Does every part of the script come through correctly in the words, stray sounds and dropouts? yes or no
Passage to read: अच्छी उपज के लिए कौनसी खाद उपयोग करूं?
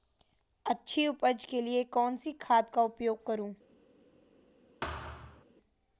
no